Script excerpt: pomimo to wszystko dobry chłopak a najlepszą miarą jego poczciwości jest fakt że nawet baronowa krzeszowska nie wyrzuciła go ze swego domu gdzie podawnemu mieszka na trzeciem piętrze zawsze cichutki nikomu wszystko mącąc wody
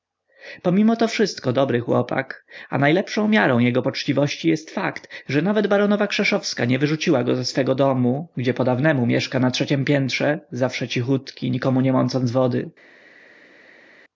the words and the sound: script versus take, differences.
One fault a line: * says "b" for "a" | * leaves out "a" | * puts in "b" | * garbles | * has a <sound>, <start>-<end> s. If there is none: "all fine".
* says "nie" for "wszystko"